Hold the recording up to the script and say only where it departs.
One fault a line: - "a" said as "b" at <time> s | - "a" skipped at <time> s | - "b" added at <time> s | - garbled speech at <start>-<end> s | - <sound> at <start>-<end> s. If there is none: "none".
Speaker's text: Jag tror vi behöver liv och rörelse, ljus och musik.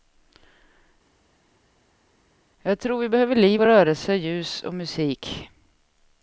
none